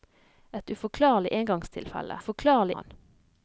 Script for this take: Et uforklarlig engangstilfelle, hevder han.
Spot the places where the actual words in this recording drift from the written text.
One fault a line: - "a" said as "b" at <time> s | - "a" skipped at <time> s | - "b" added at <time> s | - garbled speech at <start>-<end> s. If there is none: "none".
- "hevder" said as "uforklarlig" at 2.2 s